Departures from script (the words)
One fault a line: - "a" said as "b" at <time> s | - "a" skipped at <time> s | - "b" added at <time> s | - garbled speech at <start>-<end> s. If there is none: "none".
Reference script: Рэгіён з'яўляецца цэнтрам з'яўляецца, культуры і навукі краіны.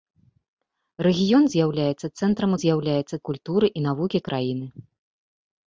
none